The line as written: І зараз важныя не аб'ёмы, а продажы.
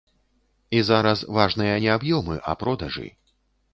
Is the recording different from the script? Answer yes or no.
no